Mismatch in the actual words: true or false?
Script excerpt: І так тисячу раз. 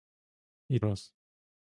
true